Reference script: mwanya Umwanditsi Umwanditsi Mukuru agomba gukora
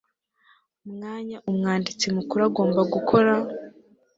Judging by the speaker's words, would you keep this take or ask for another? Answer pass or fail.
fail